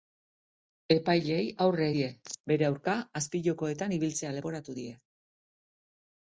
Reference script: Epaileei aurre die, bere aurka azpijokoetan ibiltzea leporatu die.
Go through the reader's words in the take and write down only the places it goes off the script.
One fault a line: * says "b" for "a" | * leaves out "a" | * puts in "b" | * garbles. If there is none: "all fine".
all fine